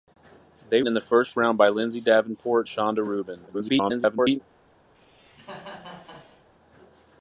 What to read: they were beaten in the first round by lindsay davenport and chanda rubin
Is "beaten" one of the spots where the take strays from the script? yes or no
yes